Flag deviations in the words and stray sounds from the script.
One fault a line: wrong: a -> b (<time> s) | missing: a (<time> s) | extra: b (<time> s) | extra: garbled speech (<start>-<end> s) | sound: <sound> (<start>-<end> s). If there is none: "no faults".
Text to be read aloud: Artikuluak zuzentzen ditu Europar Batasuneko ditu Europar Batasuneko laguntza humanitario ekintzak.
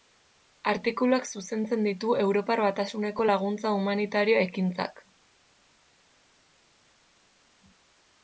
missing: ditu Europar Batasuneko (3.3 s)